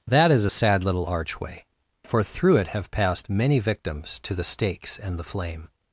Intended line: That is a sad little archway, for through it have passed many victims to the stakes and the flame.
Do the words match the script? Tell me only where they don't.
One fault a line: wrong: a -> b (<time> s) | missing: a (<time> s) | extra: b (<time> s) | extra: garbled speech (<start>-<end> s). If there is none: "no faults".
no faults